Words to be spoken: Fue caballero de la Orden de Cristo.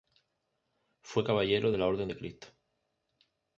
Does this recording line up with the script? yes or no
yes